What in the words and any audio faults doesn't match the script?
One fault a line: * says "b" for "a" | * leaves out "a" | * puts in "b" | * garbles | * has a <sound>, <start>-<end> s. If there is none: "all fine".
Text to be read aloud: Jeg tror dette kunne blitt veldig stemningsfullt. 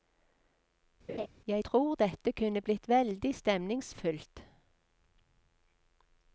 * has a laugh, 1.1-1.3 s